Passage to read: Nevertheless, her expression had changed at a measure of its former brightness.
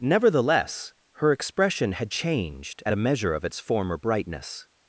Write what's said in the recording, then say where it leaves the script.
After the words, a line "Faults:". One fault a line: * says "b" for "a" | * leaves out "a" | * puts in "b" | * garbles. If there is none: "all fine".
Nevertheless, her expression had changed at a measure of its former brightness.
Faults:
all fine